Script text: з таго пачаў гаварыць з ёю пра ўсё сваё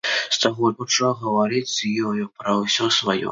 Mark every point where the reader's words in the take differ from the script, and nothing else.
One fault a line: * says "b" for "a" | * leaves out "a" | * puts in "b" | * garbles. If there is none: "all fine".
all fine